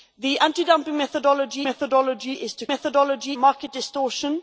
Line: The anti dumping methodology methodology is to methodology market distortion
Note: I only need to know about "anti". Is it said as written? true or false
true